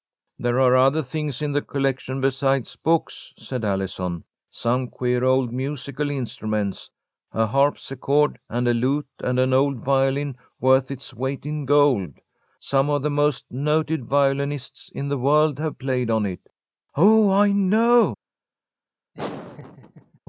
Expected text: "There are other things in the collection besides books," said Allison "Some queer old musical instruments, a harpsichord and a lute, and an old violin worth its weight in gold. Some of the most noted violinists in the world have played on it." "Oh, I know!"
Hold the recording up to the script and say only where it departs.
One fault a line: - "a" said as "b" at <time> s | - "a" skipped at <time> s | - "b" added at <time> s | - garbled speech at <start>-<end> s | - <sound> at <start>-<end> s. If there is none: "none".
- laugh at 19.1-20.2 s